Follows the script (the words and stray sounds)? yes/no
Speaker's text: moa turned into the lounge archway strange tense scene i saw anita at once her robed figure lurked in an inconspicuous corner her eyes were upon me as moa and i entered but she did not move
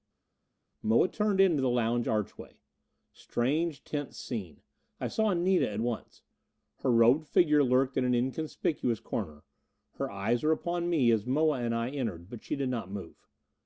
yes